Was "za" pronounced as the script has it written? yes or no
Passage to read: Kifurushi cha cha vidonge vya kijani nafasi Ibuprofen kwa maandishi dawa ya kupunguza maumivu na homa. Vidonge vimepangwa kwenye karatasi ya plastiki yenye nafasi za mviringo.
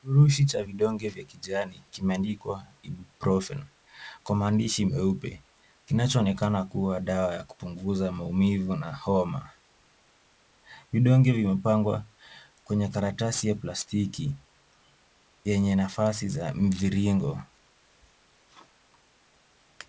yes